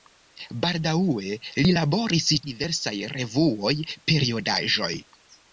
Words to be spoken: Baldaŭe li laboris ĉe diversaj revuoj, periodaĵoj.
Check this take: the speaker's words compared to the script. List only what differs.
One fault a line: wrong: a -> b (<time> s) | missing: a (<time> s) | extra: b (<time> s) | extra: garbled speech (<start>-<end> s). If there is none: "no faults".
missing: ĉe (2.3 s)